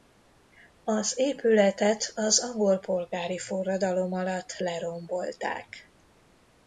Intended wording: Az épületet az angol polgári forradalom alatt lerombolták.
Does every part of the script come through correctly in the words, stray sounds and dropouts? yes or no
yes